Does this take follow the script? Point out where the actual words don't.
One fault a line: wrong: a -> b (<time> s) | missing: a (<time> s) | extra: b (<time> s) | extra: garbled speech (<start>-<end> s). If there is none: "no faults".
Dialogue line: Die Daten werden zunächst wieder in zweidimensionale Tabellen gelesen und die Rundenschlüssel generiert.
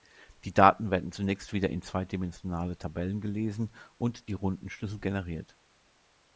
no faults